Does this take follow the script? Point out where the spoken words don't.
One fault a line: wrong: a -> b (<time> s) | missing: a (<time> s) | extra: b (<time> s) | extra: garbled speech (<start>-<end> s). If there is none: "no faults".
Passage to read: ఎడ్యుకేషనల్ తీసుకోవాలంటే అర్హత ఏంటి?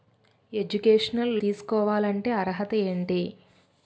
no faults